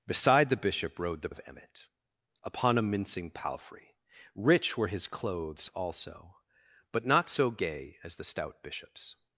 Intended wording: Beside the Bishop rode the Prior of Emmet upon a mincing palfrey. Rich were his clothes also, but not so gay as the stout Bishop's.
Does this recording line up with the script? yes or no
no